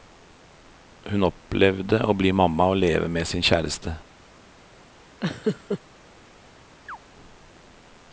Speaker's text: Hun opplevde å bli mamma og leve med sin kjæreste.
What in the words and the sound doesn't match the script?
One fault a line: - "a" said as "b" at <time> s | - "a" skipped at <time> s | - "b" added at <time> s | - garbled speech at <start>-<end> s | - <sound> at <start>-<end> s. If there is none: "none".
- laugh at 5.2-5.8 s
- chirp at 6.9-7.0 s